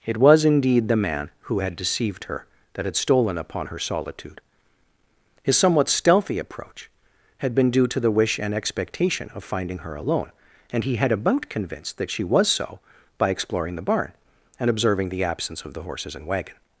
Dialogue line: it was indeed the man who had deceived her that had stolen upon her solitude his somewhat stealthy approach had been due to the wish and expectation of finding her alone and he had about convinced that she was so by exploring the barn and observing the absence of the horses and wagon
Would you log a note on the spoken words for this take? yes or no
no